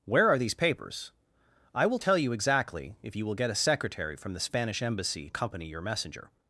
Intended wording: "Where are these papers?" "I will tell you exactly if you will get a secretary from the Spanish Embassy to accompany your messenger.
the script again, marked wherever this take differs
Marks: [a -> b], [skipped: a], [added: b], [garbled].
"Where are these papers?" "I will tell you exactly if you will get a secretary from the Spanish Embassy [skipped: to] accompany your messenger.